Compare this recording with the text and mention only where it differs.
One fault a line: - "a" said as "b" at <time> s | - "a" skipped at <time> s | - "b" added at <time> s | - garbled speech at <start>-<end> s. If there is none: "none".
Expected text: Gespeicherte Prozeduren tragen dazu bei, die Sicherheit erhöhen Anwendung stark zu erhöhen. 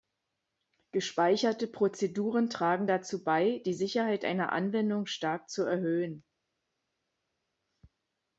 - "erhöhen" said as "einer" at 4.2 s